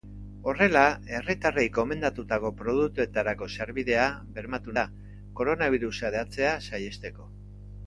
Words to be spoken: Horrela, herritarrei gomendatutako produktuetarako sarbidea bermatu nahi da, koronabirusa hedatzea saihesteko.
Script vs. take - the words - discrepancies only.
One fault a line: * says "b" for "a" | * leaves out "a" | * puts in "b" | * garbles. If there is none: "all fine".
* leaves out "nahi"